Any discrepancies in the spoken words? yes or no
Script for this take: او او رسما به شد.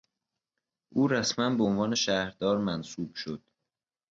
yes